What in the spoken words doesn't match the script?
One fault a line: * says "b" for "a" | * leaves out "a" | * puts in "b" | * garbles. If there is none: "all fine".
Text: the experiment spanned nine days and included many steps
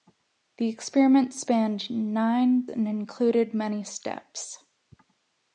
* leaves out "days"